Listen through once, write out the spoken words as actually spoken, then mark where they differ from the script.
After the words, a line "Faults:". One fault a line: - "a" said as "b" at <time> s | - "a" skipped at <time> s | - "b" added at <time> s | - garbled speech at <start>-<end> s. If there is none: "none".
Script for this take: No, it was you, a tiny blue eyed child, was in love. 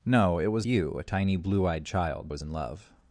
No, it was you, a tiny blue eyed child, was in love.
Faults:
none